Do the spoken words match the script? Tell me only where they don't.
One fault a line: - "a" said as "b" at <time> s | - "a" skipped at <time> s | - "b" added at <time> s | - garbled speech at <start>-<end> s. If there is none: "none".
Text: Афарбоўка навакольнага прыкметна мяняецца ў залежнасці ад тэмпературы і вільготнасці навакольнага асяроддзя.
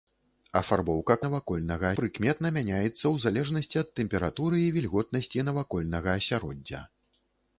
none